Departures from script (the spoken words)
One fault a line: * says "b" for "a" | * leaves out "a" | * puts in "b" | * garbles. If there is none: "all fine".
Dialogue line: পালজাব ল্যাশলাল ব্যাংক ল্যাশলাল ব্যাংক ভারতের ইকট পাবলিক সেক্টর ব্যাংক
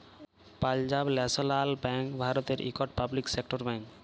* leaves out "ল্যাশলাল ব্যাংক"